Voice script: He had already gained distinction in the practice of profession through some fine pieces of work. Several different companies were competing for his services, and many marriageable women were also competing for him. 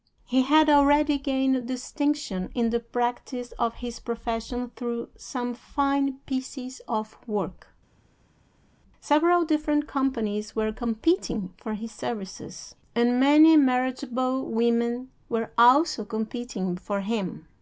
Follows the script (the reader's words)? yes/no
no